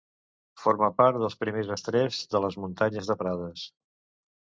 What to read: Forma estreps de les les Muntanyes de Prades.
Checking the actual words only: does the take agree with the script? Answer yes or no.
no